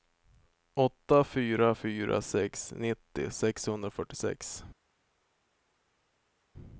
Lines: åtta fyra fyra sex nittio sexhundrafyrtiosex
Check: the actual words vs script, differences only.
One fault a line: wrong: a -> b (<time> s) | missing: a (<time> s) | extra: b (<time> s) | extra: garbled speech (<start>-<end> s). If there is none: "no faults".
no faults